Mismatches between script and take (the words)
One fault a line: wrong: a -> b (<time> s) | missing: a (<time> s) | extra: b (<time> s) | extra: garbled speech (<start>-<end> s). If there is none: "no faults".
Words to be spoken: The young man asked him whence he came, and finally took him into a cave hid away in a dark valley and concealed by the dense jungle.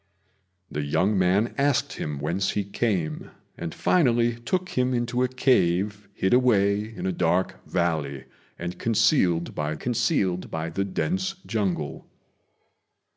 extra: concealed by (9.8 s)